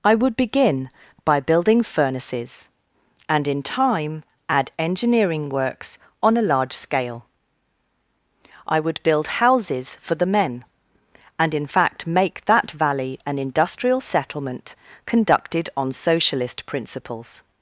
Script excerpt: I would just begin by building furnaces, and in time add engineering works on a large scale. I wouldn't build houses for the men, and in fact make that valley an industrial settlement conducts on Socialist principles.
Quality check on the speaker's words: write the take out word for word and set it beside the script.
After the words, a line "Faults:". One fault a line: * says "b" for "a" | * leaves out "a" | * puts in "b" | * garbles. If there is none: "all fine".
I would begin by building furnaces, and in time add engineering works on a large scale. I would build houses for the men, and in fact make that valley an industrial settlement conducted on Socialist principles.
Faults:
* leaves out "just"
* says "would" for "wouldn't"
* says "conducted" for "conducts"